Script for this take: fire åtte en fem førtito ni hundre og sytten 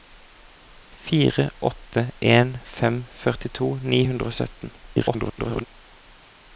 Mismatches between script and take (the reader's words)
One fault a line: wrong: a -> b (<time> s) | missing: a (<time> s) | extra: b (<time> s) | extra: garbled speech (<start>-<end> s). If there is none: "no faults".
extra: garbled speech (4.8-5.7 s)